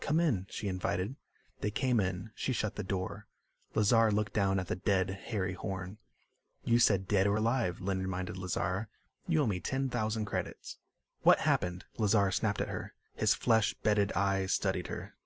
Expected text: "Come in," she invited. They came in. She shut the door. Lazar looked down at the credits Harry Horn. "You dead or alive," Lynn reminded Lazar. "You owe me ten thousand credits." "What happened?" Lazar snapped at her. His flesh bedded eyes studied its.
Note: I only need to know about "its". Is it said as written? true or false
false